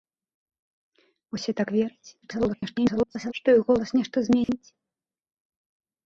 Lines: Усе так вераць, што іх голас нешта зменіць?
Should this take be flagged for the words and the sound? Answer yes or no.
yes